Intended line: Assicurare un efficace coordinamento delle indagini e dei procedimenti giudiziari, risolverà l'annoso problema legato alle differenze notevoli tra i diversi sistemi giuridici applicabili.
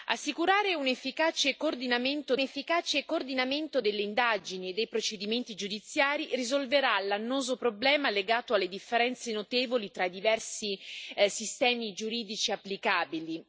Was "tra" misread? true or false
false